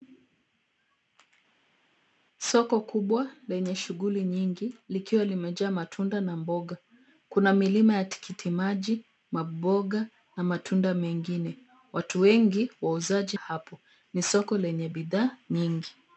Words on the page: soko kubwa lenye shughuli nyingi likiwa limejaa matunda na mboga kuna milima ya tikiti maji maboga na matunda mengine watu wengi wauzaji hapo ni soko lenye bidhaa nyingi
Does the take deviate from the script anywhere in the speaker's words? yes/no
no